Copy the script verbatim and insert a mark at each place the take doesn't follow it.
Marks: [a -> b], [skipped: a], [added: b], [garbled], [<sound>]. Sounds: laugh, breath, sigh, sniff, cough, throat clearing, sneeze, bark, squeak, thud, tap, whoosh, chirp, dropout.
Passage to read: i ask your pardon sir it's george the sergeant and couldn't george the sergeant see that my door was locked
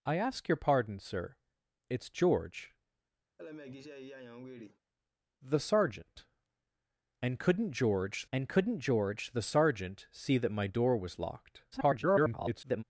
i ask your pardon sir it's george [laugh] the sergeant and couldn't george [added: and couldn't george] the sergeant see that my door was locked [garbled]